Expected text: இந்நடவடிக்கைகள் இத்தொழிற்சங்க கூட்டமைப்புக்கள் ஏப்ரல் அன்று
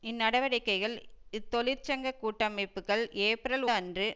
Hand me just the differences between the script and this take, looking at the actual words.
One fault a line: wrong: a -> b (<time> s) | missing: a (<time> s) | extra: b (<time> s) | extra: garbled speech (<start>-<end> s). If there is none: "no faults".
no faults